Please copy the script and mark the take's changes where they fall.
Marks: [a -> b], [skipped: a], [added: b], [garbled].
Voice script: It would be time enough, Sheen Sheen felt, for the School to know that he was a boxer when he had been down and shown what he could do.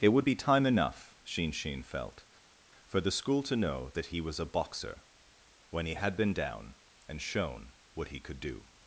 It would be time enough, Sheen Sheen felt, for the School to know that he was a boxer when he had been down and shown what he could do.